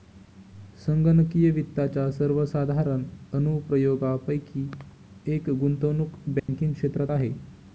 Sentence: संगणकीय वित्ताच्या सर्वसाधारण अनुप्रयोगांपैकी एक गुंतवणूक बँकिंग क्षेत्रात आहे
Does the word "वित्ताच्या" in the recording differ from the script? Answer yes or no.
no